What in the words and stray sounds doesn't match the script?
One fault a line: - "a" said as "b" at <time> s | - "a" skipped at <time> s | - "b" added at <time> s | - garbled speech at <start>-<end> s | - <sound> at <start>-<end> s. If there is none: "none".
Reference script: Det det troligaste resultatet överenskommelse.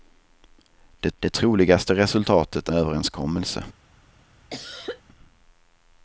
- cough at 4.5-5.0 s